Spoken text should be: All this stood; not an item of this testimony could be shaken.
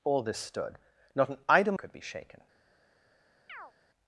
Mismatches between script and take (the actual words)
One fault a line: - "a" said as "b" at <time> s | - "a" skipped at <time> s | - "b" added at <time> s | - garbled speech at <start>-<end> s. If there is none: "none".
- "of this testimony" skipped at 1.8 s